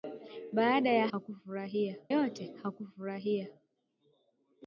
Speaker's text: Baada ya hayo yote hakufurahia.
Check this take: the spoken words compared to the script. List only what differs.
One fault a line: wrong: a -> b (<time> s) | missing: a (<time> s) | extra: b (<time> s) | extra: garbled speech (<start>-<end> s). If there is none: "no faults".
wrong: hayo -> hakufurahia (1.1 s)